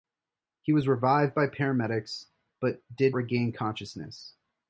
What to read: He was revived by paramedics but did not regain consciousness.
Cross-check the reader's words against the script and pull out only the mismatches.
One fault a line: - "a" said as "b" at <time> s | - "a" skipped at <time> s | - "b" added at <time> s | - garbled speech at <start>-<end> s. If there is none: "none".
- "not" skipped at 3.2 s